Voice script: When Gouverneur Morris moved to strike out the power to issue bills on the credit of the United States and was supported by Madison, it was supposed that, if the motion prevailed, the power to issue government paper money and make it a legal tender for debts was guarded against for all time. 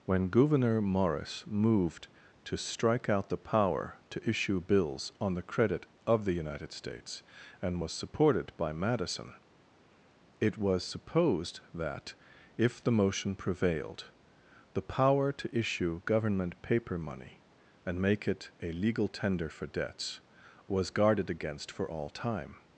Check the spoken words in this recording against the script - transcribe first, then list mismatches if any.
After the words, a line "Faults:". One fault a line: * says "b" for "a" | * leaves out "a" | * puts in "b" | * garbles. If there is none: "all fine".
When Gouverneur Morris moved to strike out the power to issue bills on the credit of the United States and was supported by Madison, it was supposed that, if the motion prevailed, the power to issue government paper money and make it a legal tender for debts was guarded against for all time.
Faults:
all fine